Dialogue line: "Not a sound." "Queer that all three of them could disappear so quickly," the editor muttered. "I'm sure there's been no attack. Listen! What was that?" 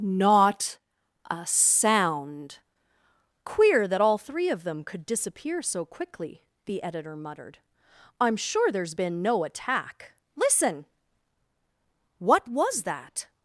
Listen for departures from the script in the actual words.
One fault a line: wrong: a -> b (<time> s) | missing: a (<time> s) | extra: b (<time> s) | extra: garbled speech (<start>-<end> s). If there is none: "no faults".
no faults